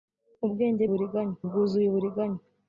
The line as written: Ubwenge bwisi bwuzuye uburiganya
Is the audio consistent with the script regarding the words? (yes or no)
no